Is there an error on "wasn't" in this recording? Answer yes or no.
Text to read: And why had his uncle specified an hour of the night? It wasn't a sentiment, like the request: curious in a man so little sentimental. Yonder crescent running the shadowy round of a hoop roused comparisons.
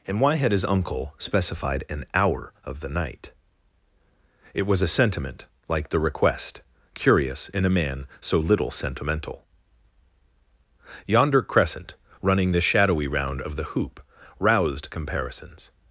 yes